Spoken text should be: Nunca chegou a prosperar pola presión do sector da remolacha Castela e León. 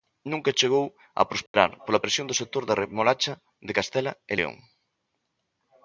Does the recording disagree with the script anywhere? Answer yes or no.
yes